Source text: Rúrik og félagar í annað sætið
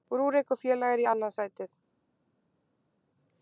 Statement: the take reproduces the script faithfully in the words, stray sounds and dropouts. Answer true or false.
true